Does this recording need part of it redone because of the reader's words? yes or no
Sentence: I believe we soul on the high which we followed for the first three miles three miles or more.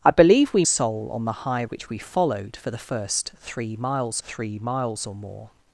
no